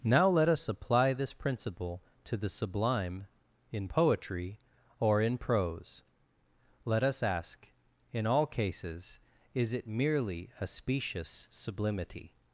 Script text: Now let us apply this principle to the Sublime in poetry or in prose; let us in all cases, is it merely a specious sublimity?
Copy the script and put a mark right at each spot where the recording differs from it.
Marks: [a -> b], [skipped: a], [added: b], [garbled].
Now let us apply this principle to the Sublime in poetry or in prose; let us [added: ask] in all cases, is it merely a specious sublimity?